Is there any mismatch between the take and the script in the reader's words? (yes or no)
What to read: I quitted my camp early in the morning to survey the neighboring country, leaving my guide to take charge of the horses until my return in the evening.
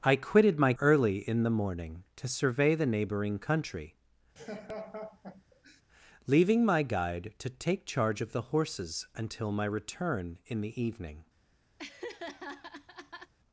yes